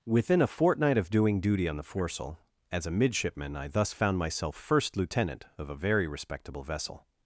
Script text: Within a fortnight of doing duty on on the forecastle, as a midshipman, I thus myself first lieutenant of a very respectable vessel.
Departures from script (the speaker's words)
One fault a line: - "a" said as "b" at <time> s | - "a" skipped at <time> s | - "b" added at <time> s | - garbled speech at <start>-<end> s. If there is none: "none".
- "on" skipped at 1.8 s
- "found" added at 3.9 s